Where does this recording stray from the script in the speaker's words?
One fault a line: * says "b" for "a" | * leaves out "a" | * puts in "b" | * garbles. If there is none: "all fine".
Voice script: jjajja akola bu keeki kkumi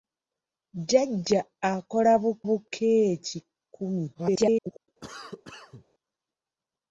* puts in "bu"
* garbles